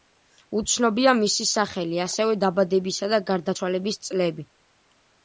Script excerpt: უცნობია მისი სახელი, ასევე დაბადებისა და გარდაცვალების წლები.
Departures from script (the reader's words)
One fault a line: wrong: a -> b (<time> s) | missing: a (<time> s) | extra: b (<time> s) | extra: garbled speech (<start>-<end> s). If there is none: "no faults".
no faults